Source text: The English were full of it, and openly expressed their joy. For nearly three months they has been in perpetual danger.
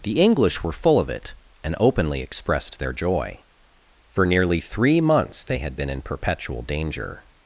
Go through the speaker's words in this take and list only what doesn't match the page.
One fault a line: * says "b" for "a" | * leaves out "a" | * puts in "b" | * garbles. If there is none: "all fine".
* says "had" for "has"